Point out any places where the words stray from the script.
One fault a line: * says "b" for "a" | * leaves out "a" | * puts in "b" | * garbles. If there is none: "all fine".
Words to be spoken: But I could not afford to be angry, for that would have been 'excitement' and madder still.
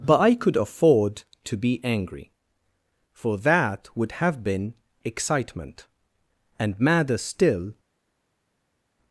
* leaves out "not"